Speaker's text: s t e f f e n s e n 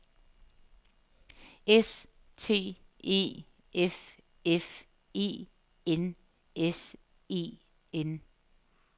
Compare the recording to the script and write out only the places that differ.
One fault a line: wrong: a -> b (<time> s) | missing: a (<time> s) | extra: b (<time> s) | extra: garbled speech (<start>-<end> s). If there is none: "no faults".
no faults